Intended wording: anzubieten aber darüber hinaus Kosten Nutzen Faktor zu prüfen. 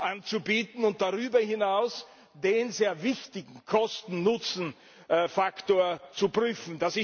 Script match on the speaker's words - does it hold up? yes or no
no